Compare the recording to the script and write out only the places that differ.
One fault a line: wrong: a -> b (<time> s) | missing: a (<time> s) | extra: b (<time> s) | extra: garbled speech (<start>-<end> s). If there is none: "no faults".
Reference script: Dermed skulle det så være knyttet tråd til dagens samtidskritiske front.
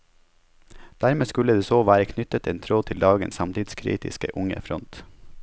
extra: en (2.5 s)
extra: unge (4.3 s)